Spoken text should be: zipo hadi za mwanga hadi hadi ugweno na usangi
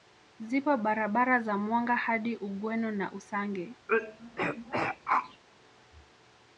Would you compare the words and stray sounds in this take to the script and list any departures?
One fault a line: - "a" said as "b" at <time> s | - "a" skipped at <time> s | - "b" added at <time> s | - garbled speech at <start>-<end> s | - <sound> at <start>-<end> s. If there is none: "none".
- "hadi" said as "barabara" at 0.8 s
- "hadi" skipped at 2.4 s
- throat clearing at 3.9-5.4 s